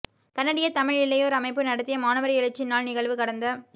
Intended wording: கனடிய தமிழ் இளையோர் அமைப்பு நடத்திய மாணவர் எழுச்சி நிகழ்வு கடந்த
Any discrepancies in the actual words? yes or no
yes